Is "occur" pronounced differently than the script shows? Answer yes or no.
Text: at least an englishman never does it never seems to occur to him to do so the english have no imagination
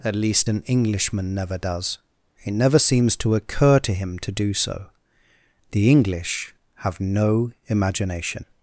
no